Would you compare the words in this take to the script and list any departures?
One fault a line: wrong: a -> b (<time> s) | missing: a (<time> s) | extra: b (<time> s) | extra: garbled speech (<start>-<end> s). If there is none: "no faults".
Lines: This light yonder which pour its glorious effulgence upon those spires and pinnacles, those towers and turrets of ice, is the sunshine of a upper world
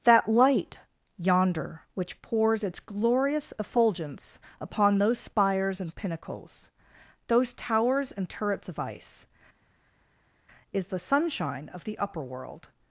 wrong: This -> That (0.0 s)
wrong: pour -> pours (2.2 s)
wrong: a -> the (11.8 s)